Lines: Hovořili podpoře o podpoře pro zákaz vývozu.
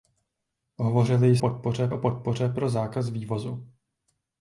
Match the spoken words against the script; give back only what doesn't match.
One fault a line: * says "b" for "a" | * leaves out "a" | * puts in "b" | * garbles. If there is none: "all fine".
all fine